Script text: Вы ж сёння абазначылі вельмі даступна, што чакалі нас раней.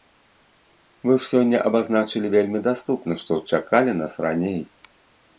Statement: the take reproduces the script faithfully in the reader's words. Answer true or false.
true